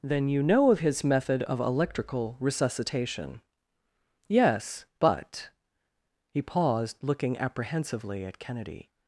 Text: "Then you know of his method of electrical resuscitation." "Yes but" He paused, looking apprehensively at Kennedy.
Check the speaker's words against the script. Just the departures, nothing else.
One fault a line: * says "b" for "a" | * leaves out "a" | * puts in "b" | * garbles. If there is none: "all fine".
all fine